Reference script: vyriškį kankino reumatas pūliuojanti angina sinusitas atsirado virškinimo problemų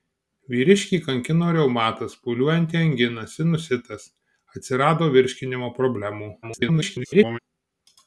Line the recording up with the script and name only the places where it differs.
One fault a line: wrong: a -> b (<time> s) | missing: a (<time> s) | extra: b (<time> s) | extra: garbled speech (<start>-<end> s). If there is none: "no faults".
extra: garbled speech (6.4-7.4 s)